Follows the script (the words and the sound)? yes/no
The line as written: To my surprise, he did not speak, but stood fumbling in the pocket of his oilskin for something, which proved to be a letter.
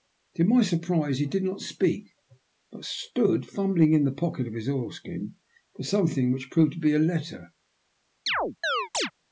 no